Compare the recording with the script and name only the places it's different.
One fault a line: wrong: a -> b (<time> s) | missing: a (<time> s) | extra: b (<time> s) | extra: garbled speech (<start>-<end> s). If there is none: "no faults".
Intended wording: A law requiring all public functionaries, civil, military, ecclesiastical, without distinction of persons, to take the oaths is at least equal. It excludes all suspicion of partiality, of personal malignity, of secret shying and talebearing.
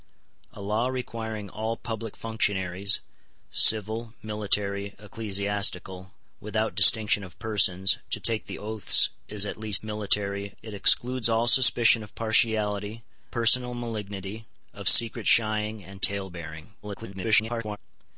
wrong: equal -> military (9.8 s)
missing: of (13.0 s)
extra: garbled speech (16.8-17.8 s)